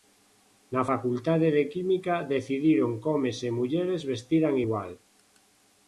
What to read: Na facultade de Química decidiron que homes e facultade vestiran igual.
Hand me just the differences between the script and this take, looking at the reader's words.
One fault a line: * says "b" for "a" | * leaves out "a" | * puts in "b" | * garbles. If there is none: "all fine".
* says "mulleres" for "facultade"